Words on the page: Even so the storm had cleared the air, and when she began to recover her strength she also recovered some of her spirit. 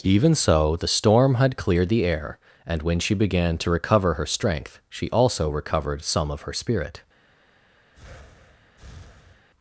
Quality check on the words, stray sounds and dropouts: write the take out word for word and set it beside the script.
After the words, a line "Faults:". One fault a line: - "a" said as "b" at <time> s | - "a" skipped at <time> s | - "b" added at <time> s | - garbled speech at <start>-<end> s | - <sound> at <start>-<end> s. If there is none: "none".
Even so the storm had cleared the air, and when she began to recover her strength she also recovered some of her spirit.
Faults:
- breath at 7.9-9.5 s